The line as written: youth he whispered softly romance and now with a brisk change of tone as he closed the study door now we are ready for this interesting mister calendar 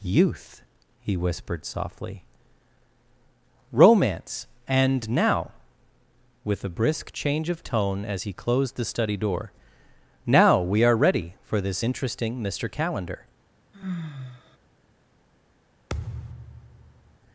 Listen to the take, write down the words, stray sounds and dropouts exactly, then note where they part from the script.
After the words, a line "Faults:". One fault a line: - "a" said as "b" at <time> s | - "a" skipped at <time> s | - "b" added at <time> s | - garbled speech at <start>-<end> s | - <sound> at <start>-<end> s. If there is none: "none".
youth he whispered softly romance and now with a brisk change of tone as he closed the study door now we are ready for this interesting mister calendar
Faults:
- sigh at 13.7-14.6 s
- thud at 15.9-17.2 s